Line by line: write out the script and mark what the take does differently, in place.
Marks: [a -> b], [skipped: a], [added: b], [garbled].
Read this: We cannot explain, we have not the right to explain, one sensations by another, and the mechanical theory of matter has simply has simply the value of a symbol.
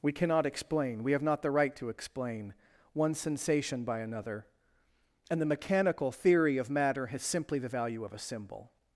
We cannot explain, we have not the right to explain, one [sensations -> sensation] by another, and the mechanical theory of matter has simply [skipped: has simply] the value of a symbol.